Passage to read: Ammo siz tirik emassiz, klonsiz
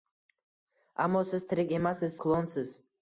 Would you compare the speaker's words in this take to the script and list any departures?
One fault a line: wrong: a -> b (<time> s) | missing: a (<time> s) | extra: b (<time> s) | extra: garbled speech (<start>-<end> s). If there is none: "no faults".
no faults